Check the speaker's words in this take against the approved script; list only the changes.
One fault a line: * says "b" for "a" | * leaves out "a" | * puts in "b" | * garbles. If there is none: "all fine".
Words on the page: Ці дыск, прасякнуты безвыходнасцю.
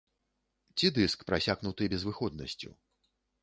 all fine